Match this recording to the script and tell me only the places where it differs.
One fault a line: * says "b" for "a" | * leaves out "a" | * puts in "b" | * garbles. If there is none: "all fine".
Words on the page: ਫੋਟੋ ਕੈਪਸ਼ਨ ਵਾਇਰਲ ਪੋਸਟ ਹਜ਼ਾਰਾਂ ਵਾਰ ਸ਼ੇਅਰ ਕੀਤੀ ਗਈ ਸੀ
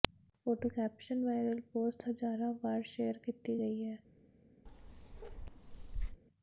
* says "ਹੈ" for "ਸੀ"